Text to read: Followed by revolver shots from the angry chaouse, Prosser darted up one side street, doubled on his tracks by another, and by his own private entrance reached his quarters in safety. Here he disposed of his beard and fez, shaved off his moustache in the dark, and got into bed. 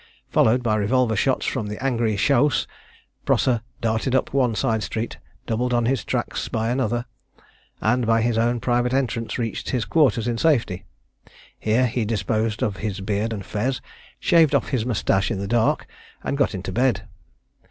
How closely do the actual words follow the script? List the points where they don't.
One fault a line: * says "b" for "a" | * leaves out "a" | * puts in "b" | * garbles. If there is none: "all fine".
all fine